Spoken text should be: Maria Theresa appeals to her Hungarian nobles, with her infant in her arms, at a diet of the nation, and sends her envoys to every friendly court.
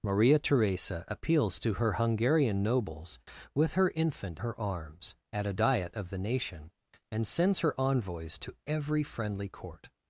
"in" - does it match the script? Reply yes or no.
no